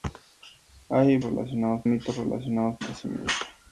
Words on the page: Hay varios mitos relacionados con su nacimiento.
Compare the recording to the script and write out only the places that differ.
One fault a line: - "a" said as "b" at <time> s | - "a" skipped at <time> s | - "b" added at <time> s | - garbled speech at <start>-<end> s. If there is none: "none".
- "varios" said as "relacionados" at 1.2 s
- "con su" skipped at 2.8 s